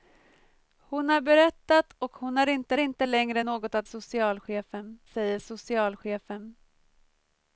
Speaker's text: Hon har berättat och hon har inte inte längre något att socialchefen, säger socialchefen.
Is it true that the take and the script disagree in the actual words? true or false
false